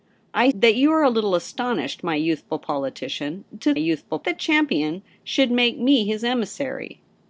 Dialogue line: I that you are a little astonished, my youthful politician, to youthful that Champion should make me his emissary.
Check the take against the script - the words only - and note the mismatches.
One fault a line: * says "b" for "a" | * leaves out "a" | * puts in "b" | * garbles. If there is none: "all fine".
all fine